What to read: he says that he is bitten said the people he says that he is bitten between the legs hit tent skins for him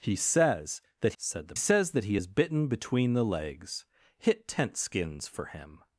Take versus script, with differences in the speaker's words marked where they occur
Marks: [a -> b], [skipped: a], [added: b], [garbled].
he says that [skipped: he is bitten] said the [skipped: people he] says that he is bitten between the legs hit tent skins for him